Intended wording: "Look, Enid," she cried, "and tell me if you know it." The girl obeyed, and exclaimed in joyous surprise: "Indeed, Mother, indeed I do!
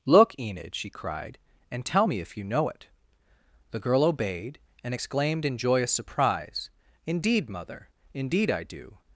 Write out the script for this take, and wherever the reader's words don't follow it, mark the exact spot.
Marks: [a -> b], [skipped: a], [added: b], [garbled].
"Look, Enid," she cried, "and tell me if you know it." The girl obeyed, and exclaimed in joyous surprise: "Indeed, Mother, indeed I do!